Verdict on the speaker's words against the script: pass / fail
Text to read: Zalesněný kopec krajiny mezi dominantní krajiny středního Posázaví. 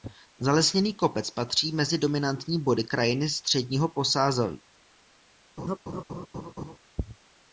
fail